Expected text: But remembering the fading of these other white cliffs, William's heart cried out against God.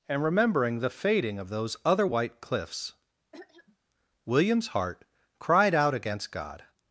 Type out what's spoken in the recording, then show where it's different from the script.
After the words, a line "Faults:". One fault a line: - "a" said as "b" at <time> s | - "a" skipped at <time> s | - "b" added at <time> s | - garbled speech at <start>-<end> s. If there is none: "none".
And remembering the fading of those other white cliffs, William's heart cried out against God.
Faults:
- "But" said as "And" at 0.1 s
- "these" said as "those" at 1.5 s